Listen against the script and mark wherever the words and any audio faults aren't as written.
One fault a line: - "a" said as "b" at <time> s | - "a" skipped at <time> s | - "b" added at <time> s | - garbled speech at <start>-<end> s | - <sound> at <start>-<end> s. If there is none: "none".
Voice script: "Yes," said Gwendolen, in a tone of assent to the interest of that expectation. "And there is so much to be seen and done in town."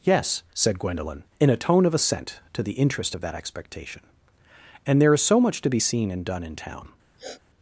- sniff at 7.2-7.4 s